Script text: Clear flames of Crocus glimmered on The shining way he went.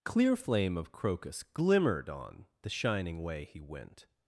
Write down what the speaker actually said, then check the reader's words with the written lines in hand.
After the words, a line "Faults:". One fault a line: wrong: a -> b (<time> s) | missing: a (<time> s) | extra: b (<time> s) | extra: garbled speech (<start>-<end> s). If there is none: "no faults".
Clear flame of Crocus glimmered on The shining way he went.
Faults:
wrong: flames -> flame (0.3 s)